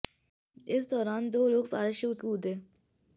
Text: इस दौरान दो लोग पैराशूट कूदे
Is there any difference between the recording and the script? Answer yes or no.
no